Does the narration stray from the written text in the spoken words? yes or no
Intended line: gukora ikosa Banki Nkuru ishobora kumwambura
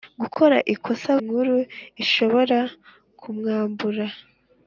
yes